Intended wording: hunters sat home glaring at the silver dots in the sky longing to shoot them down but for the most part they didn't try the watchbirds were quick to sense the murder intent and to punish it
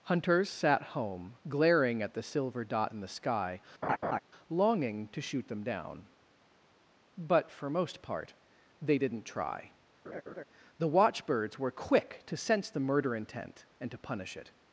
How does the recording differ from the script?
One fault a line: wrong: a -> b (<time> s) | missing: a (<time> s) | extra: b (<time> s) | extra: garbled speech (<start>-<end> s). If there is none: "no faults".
wrong: dots -> dot (2.6 s)
missing: the (7.7 s)